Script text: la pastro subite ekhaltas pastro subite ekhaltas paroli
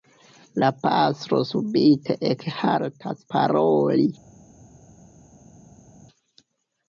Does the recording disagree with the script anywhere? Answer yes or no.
yes